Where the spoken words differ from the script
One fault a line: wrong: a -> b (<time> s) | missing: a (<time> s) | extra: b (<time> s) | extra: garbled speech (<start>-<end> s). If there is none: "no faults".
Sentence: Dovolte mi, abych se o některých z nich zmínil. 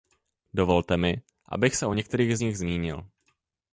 no faults